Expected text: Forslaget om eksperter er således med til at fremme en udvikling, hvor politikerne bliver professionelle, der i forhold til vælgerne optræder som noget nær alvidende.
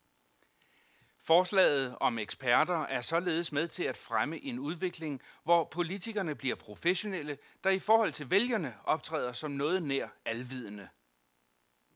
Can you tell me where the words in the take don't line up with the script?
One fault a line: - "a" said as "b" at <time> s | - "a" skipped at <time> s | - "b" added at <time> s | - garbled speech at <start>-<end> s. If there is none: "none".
none